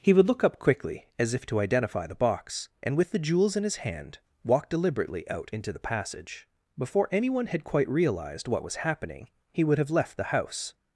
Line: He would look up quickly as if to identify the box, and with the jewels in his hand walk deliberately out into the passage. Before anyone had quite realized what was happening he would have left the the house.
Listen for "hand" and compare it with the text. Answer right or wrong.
right